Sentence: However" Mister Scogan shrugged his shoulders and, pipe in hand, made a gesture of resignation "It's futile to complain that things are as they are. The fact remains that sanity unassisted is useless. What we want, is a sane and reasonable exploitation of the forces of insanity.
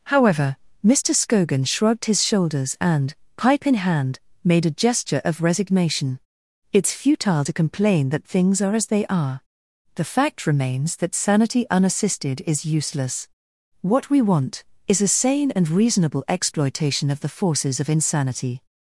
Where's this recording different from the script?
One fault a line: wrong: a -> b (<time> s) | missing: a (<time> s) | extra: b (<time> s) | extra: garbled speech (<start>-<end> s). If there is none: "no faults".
no faults